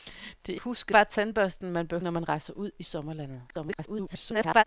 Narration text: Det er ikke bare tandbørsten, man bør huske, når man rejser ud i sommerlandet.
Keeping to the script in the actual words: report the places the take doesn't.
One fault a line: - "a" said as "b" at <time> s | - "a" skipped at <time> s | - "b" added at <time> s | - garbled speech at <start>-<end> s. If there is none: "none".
- "ikke" said as "huske" at 0.5 s
- "huske" skipped at 2.0 s
- garbled speech at 3.5-4.6 s